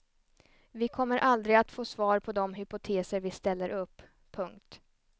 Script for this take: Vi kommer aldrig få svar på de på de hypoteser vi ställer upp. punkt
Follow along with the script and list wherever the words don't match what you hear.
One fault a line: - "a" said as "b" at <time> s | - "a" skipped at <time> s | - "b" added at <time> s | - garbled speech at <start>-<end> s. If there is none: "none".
- "att" added at 1.6 s
- "på de" skipped at 2.5 s